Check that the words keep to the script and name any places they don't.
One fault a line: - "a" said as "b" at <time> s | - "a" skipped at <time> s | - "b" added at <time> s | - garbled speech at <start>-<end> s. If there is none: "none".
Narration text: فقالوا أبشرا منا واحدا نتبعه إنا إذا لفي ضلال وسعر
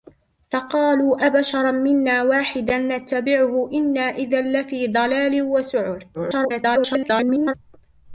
- garbled speech at 6.1-7.5 s